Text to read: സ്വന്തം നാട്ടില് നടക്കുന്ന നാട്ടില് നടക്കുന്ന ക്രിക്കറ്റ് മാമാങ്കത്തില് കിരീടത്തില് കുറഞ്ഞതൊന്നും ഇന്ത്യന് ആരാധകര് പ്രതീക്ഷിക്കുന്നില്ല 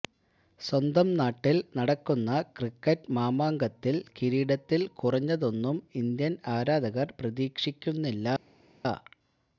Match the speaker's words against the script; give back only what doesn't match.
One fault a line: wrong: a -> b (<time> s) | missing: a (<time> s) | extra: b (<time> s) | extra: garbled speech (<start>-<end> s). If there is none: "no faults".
missing: നാട്ടില് നടക്കുന്ന (2.3 s)